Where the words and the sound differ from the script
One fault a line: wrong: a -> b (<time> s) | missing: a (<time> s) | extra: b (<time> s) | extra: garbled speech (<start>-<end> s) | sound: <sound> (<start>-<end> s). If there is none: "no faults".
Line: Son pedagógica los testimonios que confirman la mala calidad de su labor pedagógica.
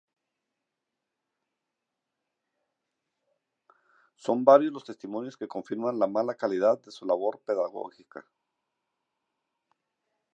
wrong: pedagógica -> varios (4.4 s)